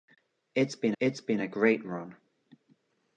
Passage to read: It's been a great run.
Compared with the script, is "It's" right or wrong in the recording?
right